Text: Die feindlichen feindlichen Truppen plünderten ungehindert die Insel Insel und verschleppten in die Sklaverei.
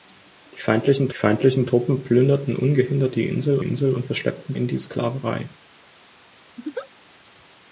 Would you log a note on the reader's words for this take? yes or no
no